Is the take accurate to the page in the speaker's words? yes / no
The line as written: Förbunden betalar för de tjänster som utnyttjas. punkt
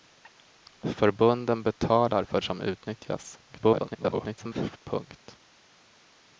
no